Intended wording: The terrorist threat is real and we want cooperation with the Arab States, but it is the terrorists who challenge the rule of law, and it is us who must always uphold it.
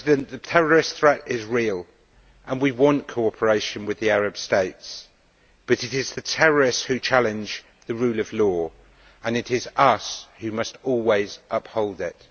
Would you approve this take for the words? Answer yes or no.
yes